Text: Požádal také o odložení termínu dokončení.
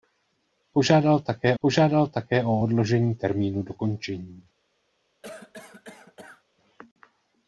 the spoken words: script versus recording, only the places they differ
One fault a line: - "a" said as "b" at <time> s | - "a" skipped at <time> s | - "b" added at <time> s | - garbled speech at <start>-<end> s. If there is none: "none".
- "požádal také" added at 1.6 s